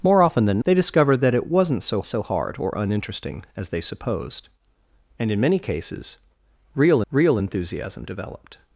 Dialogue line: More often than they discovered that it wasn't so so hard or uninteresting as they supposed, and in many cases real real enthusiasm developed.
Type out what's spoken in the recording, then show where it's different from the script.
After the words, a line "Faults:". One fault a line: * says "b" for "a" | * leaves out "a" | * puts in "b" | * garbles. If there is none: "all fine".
More often than they discovered that it wasn't so so hard or uninteresting as they supposed, and in many cases real real enthusiasm developed.
Faults:
all fine